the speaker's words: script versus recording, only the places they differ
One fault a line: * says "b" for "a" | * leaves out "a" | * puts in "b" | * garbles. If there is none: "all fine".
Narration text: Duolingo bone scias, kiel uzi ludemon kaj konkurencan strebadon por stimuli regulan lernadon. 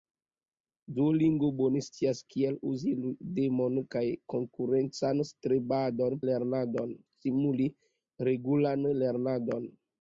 * says "lernadon" for "por"